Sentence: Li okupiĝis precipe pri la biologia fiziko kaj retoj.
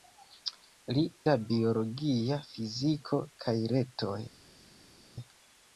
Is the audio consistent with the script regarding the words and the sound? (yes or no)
no